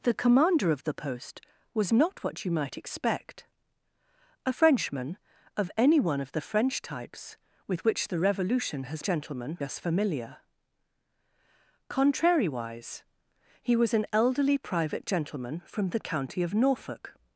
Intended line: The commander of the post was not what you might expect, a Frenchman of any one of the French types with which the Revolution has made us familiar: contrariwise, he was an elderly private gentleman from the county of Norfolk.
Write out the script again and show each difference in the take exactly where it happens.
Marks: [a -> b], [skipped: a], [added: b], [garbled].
The commander of the post was not what you might expect, a Frenchman of any one of the French types with which the Revolution has [made -> gentleman] us familiar: contrariwise, he was an elderly private gentleman from the county of Norfolk.